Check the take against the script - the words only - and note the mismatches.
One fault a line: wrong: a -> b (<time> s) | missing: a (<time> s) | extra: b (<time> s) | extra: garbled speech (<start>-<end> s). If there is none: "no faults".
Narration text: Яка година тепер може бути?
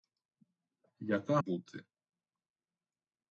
missing: година тепер може (1.4 s)